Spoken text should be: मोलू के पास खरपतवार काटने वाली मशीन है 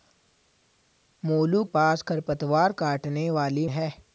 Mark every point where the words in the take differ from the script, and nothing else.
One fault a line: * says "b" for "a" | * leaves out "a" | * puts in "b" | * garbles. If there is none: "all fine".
* leaves out "के"
* leaves out "मशीन"